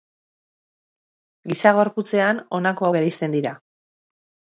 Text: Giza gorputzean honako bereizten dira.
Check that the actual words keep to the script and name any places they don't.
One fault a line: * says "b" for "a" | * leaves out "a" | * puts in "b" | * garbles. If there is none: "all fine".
all fine